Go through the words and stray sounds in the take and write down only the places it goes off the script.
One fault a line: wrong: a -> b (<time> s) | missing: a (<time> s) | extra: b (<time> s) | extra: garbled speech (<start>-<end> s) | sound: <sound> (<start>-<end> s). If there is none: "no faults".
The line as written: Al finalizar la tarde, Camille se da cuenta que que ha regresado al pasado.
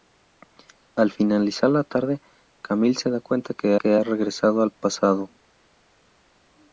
no faults